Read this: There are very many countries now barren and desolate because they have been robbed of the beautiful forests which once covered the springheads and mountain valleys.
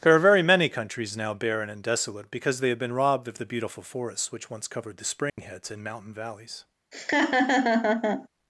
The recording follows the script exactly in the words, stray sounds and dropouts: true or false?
false